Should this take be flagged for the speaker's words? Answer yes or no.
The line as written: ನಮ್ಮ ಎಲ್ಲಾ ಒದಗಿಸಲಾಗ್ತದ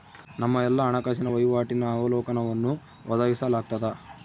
yes